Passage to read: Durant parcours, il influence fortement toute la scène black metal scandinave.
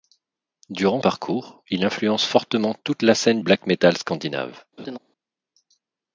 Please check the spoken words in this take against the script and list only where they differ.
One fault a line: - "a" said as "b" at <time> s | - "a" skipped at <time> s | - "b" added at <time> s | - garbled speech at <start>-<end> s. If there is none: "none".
none